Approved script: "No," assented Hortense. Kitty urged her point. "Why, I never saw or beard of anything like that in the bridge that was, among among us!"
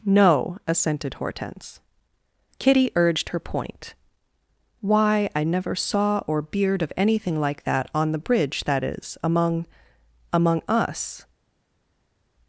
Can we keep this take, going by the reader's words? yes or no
no